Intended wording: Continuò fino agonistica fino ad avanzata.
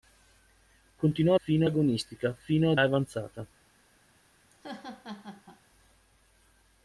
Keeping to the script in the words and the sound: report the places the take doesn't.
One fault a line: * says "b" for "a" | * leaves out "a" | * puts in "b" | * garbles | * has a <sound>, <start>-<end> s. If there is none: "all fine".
* has a laugh, 4.5-5.6 s